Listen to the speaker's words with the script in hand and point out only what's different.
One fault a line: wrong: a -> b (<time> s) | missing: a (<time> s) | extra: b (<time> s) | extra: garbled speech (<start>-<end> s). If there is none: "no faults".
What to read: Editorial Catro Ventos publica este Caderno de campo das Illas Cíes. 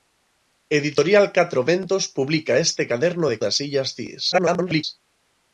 missing: campo (3.4 s)
extra: garbled speech (4.3-4.8 s)